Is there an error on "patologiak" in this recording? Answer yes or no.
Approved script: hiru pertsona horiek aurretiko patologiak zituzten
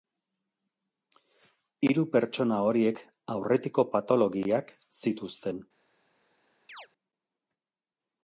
no